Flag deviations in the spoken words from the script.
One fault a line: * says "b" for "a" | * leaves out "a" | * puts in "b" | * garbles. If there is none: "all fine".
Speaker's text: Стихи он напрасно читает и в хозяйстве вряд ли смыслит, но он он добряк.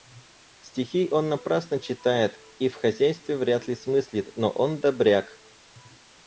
* leaves out "он"